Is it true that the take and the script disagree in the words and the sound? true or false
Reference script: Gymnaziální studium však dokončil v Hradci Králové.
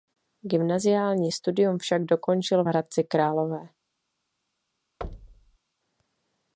true